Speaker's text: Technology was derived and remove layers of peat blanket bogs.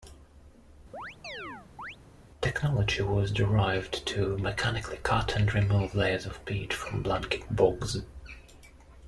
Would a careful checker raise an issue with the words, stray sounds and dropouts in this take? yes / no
yes